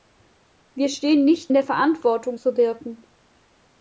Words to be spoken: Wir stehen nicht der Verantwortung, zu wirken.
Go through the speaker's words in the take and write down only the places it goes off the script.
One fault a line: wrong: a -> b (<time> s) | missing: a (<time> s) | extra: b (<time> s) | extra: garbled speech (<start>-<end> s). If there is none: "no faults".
no faults